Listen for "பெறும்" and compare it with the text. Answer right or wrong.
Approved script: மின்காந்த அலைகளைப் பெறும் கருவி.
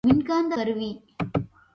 wrong